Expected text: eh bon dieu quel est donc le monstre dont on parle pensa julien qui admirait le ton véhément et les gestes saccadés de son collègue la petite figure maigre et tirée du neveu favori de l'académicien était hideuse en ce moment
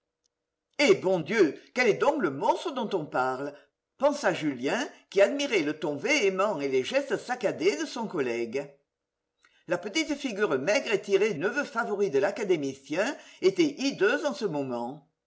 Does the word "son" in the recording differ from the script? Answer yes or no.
no